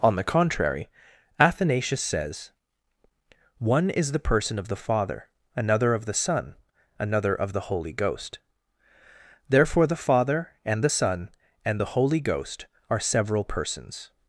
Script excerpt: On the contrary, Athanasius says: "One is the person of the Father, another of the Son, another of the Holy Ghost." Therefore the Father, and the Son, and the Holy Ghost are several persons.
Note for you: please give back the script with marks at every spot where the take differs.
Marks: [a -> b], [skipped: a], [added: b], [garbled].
On the contrary, Athanasius says: "One is the person of the Father, another of the Son, another of the Holy Ghost." Therefore the Father, and the Son, and the Holy Ghost are several persons.